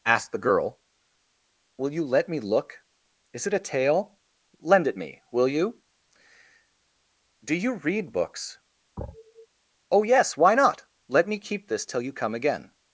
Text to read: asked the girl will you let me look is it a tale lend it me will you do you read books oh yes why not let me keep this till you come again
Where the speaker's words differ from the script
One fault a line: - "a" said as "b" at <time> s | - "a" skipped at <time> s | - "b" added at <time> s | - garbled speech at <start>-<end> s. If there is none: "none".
none